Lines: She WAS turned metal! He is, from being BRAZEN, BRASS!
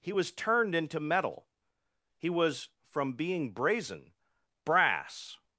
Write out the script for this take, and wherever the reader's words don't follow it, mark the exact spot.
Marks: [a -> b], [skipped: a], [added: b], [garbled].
[She -> He] WAS turned [added: into] metal! He [is, -> was] from being BRAZEN, BRASS!